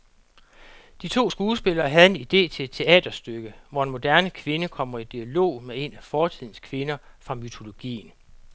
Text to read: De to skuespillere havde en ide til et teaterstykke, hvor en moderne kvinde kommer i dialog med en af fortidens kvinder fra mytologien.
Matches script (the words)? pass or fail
pass